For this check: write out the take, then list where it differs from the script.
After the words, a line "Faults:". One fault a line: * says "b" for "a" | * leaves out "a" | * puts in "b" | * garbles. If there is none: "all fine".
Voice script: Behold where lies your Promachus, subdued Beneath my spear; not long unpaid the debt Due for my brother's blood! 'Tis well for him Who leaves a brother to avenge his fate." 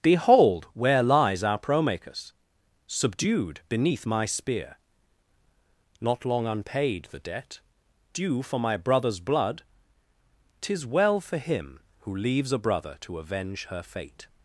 Behold where lies our Promachus, subdued Beneath my spear; not long unpaid the debt Due for my brother's blood! 'Tis well for him Who leaves a brother to avenge her fate."
Faults:
* says "our" for "your"
* says "her" for "his"